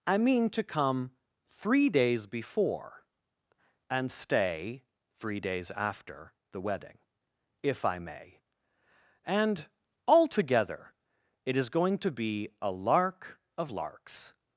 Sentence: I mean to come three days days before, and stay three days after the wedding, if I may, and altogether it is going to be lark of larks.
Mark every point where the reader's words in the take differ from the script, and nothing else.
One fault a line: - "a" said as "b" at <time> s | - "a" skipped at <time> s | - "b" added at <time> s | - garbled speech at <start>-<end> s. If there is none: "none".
- "days" skipped at 2.2 s
- "a" added at 12.6 s